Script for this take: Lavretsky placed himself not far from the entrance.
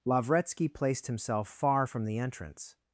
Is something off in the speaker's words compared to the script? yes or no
yes